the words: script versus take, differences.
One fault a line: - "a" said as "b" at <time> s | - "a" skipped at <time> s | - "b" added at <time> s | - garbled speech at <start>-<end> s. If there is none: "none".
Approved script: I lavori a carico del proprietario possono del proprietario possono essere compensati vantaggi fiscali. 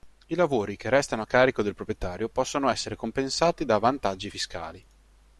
- "che restano" added at 0.8 s
- "del proprietario possono" skipped at 2.7 s
- "da" added at 3.7 s